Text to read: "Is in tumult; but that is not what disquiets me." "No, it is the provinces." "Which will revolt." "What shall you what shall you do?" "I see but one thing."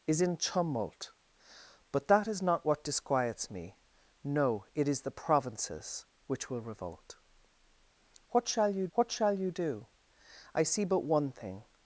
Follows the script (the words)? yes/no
yes